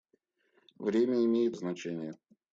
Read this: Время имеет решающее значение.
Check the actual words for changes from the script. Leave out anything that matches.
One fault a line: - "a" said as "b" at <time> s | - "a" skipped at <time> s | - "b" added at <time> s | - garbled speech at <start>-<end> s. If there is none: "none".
- "решающее" skipped at 1.6 s